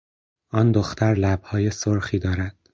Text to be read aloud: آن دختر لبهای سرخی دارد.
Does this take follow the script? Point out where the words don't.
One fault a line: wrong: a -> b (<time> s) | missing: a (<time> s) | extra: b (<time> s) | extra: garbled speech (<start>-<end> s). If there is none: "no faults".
no faults